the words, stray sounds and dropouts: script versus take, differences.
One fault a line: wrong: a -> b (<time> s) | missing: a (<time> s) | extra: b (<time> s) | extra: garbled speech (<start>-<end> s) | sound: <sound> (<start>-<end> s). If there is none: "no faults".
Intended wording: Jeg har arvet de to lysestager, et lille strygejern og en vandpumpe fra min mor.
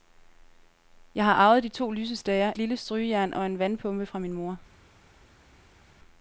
missing: et (2.5 s)